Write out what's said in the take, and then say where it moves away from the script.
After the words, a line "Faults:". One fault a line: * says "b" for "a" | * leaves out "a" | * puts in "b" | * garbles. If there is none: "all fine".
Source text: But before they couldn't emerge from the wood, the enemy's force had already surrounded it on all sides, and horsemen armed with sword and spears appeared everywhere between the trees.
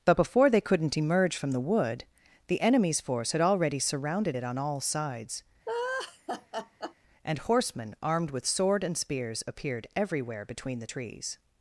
But before they couldn't emerge from the wood, the enemy's force had already surrounded it on all sides, and horsemen armed with sword and spears appeared everywhere between the trees.
Faults:
all fine